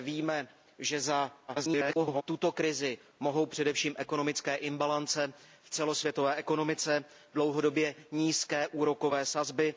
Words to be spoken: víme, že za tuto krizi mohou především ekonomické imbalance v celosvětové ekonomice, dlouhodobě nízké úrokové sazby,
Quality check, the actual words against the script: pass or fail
fail